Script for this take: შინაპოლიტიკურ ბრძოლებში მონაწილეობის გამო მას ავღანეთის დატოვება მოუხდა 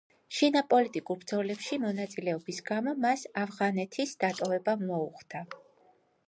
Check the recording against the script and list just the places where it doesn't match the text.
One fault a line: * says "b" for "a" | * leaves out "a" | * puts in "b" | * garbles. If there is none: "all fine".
all fine